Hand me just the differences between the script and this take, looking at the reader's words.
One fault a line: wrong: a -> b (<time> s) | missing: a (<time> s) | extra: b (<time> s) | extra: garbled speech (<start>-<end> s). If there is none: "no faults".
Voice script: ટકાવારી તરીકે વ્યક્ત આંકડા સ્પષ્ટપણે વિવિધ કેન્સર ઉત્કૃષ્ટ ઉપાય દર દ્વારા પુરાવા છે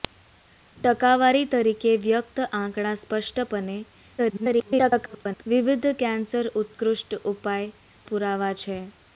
extra: garbled speech (4.2-5.4 s)
missing: દર દ્વારા (7.7 s)